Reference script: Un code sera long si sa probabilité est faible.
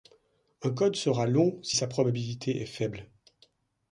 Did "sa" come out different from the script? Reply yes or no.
no